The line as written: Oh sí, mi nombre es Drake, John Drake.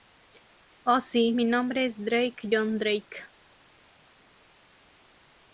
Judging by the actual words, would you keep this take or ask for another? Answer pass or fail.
pass